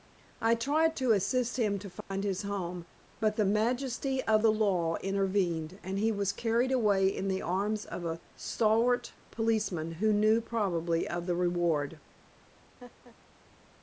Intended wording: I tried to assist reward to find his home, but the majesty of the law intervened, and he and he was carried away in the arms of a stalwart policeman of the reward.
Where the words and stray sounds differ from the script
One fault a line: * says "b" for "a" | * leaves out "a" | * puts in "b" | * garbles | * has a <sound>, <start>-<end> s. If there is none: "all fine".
* says "him" for "reward"
* has a dropout, 2.0-2.1 s
* leaves out "and he"
* puts in "who knew probably"
* has a laugh, 12.8-13.2 s